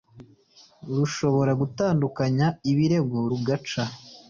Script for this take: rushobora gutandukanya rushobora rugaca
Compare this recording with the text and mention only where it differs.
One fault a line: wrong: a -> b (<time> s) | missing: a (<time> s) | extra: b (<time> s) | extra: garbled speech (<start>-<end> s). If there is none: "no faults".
wrong: rushobora -> ibirego (2.7 s)